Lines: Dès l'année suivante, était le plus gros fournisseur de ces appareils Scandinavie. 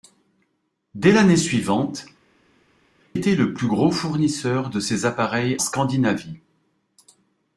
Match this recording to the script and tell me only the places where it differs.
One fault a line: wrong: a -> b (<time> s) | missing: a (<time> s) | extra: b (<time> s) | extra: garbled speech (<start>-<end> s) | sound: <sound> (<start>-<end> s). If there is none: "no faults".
no faults